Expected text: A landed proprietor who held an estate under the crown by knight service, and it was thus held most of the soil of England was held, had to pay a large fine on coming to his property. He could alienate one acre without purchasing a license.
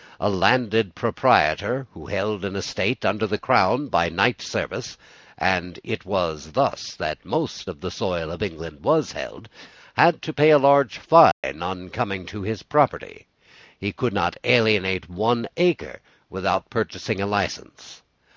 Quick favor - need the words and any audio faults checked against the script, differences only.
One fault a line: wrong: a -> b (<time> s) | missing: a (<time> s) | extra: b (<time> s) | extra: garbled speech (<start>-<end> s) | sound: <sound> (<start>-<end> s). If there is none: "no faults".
wrong: held -> that (7.0 s)
sound: dropout (11.3-11.4 s)
extra: not (14.1 s)